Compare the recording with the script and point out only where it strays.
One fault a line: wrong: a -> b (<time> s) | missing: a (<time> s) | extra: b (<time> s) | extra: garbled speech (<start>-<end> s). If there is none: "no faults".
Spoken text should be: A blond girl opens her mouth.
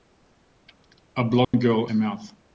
missing: opens (1.9 s)